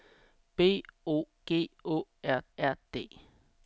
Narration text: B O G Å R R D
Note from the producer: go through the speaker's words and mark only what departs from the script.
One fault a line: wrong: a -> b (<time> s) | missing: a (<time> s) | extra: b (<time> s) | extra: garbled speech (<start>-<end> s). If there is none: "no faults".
no faults